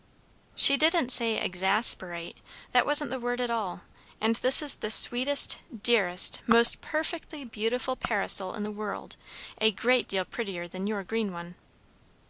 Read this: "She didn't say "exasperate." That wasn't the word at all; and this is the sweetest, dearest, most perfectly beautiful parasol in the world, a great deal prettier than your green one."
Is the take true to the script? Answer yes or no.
yes